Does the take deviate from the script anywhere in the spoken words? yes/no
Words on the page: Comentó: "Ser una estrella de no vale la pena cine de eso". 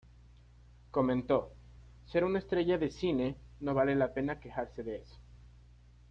yes